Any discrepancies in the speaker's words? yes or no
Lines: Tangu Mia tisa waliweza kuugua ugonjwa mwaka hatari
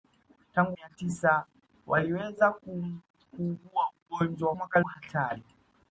no